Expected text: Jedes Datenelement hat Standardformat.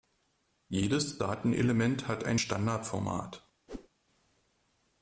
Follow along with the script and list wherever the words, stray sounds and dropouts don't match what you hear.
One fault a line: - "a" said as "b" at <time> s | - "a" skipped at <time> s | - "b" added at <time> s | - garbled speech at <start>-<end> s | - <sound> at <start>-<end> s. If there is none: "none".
- "ein" added at 2.2 s
- whoosh at 3.7-3.9 s